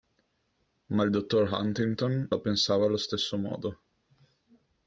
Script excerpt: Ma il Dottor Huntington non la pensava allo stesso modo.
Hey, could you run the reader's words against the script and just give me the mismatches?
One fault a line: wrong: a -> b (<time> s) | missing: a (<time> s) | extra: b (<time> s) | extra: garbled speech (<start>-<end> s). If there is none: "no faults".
missing: non (2.3 s)